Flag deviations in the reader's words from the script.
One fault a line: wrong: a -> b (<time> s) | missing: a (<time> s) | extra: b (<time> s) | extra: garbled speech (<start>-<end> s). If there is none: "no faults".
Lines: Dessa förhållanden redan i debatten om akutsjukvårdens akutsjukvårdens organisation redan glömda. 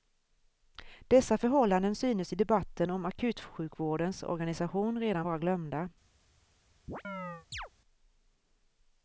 wrong: redan -> synes (1.9 s)
missing: akutsjukvårdens (4.2 s)
extra: vara (5.2 s)